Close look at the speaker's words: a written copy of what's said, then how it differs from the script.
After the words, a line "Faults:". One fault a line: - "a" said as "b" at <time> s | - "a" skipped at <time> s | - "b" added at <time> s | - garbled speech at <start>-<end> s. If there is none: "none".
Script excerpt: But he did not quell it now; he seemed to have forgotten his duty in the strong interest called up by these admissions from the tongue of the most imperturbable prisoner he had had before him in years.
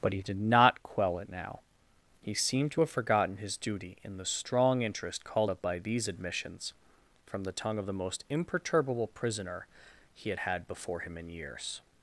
But he did not quell it now; he seemed to have forgotten his duty in the strong interest called up by these admissions from the tongue of the most imperturbable prisoner he had had before him in years.
Faults:
none